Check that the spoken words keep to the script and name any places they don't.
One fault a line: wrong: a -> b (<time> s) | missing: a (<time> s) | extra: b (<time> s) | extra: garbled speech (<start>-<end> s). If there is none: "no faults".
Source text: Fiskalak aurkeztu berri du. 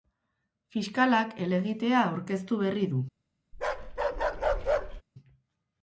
extra: helegitea (1.4 s)